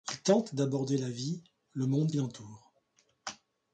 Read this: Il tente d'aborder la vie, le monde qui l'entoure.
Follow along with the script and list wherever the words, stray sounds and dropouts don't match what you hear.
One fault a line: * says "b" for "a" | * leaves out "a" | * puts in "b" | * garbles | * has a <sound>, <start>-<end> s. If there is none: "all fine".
* leaves out "qui"